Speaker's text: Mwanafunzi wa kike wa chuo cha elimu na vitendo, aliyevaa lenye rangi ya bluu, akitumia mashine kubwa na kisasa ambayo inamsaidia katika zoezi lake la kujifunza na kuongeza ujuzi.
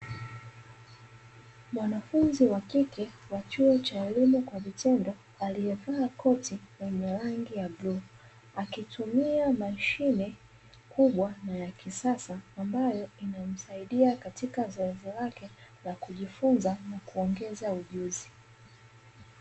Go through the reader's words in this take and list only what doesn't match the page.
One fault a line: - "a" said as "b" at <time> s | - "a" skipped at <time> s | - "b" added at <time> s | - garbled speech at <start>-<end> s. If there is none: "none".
- "na" said as "kwa" at 4.4 s
- "koti" added at 6.1 s
- "ya" added at 11.6 s